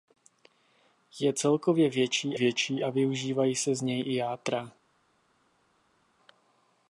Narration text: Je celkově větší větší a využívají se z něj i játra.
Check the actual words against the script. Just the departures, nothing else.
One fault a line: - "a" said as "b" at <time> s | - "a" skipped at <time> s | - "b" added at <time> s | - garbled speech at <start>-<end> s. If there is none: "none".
none